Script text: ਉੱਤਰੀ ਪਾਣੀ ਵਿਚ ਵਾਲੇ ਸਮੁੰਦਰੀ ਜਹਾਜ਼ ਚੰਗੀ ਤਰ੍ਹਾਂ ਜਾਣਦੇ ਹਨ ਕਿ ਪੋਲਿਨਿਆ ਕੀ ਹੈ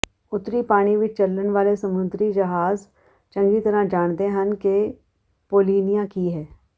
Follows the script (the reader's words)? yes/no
no